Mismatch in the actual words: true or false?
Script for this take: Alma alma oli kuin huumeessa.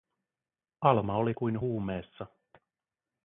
true